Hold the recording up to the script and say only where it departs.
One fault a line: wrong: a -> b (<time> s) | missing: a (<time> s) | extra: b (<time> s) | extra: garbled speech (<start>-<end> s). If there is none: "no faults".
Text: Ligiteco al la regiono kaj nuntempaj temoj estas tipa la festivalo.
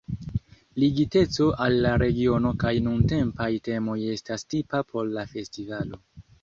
extra: por (4.9 s)